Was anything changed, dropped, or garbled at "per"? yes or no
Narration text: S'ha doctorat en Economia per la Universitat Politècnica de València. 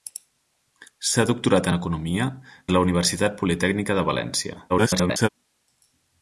yes